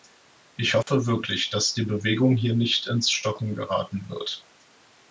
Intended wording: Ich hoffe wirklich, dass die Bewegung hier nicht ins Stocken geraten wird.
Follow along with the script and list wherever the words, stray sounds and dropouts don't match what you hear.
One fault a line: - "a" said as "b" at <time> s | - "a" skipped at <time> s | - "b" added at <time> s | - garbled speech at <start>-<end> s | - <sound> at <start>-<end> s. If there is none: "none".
- dropout at 0.8-0.9 s